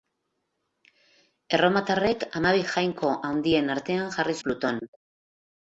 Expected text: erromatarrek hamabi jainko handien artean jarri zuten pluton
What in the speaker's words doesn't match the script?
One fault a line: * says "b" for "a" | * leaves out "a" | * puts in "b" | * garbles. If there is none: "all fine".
* leaves out "zuten"